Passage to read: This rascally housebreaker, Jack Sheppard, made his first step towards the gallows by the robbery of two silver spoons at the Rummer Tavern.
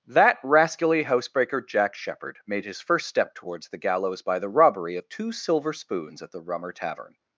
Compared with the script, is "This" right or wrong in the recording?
wrong